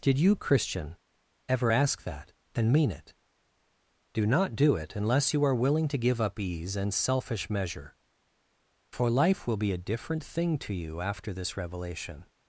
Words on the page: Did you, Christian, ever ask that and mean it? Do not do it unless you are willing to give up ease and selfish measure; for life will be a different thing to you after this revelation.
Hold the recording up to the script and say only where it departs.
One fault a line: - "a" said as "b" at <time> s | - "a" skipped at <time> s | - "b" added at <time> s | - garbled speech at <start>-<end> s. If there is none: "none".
none